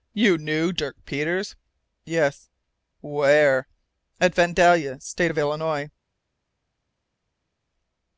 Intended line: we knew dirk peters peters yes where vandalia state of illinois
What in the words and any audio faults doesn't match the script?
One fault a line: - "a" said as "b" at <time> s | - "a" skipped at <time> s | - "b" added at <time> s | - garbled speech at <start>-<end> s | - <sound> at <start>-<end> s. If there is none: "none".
- "we" said as "you" at 0.1 s
- "peters" skipped at 1.6 s
- "at" added at 4.2 s